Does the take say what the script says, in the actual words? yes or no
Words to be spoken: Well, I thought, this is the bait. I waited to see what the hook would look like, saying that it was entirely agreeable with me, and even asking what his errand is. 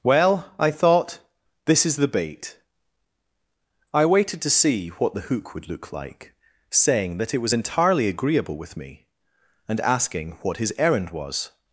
no